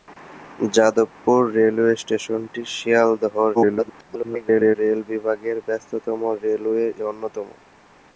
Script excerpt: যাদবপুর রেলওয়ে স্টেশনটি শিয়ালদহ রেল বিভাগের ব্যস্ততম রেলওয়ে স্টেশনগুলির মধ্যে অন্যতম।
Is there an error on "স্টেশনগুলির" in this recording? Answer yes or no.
yes